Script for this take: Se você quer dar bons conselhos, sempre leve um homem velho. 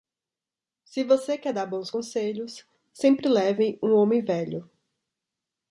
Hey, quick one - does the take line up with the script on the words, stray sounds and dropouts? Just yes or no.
yes